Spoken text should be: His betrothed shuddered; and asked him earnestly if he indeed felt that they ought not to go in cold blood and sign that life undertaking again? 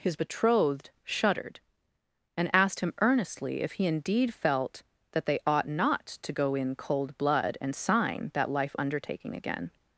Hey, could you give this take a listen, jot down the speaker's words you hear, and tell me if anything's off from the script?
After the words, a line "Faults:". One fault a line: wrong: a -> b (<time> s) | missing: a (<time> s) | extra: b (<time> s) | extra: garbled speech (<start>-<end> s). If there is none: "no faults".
His betrothed shuddered; and asked him earnestly if he indeed felt that they ought not to go in cold blood and sign that life undertaking again?
Faults:
no faults